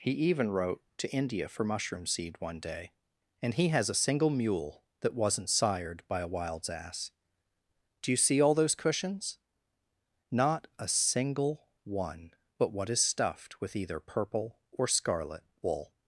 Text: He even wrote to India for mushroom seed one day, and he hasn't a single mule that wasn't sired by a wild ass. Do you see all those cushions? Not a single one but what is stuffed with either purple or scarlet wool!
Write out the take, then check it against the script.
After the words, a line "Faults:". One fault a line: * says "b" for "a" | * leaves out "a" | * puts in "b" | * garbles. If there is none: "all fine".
He even wrote to India for mushroom seed one day, and he has a single mule that wasn't sired by a wilds ass. Do you see all those cushions? Not a single one but what is stuffed with either purple or scarlet wool!
Faults:
* says "has" for "hasn't"
* says "wilds" for "wild"